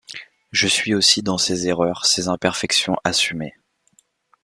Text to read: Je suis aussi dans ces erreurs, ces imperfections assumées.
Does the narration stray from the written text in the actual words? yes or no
no